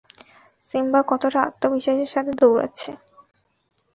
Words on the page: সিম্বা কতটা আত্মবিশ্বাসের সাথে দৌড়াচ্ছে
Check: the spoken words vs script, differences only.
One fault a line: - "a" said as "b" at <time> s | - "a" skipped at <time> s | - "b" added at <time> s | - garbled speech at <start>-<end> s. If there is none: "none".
none